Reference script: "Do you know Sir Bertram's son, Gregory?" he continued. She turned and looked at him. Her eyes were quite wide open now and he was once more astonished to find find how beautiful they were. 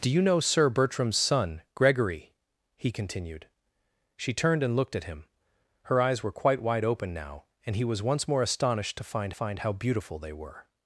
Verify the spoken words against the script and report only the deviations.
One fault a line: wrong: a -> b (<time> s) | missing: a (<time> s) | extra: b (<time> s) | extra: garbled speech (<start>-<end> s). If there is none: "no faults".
no faults